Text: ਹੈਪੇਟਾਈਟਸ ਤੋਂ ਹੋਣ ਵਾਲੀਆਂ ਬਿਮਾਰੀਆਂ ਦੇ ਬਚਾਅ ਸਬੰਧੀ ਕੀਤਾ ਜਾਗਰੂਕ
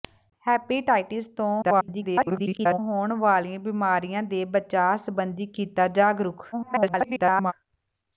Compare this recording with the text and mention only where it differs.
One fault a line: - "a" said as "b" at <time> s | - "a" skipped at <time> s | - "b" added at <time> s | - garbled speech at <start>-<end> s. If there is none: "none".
- garbled speech at 1.6-2.8 s
- garbled speech at 6.5-7.5 s